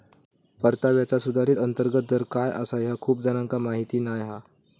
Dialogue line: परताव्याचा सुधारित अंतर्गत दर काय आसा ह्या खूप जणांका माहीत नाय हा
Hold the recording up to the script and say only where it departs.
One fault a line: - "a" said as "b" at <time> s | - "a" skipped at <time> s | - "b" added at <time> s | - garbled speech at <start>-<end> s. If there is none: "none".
none